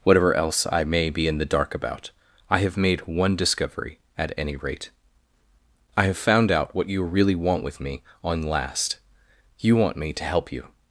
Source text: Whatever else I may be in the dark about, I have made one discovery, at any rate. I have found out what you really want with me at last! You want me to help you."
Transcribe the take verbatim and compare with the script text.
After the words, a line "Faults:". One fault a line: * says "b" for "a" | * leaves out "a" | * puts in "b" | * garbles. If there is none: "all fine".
Whatever else I may be in the dark about, I have made one discovery, at any rate. I have found out what you really want with me on last! You want me to help you."
Faults:
* says "on" for "at"